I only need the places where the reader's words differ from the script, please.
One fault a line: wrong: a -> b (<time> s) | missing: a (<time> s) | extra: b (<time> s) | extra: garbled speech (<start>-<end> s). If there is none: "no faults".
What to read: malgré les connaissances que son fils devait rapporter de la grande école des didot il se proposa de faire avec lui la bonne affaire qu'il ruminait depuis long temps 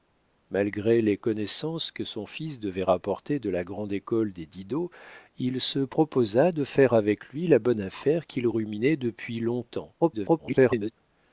extra: garbled speech (10.0-10.9 s)